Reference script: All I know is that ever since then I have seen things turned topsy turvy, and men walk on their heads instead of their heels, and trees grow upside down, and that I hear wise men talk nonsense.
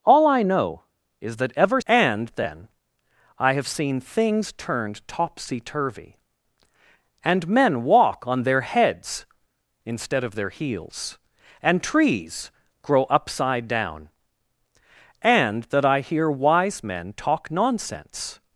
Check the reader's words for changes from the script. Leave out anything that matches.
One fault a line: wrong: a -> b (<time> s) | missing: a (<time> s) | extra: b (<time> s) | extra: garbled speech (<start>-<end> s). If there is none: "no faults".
wrong: since -> and (1.8 s)